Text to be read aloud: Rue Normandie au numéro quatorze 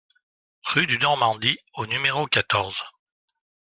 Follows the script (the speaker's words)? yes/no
no